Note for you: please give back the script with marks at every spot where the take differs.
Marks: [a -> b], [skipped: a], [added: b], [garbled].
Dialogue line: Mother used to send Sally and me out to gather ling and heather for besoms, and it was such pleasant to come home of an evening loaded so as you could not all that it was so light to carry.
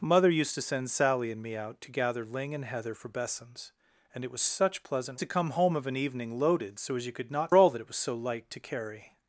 Mother used to send Sally and me out to gather ling and heather for besoms, and it was such pleasant to come home of an evening loaded so as you could not all that it was so light to carry.